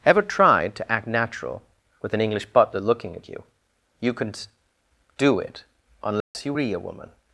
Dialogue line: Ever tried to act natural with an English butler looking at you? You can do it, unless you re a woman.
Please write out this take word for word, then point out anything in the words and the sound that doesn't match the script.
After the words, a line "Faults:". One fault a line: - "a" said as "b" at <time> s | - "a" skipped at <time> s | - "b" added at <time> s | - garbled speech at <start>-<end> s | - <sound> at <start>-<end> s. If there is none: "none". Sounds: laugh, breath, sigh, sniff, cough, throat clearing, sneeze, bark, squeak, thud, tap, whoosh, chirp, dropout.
Ever tried to act natural with an English butler looking at you? You can do it, unless you re a woman.
Faults:
- dropout at 6.2-6.3 s